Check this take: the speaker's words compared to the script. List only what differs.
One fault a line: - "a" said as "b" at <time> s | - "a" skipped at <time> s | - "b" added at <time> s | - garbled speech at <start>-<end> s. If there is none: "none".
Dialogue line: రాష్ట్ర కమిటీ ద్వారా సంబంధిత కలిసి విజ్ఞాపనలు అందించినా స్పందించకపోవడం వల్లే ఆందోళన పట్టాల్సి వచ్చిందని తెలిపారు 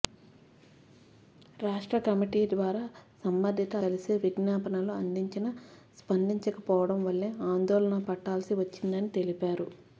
none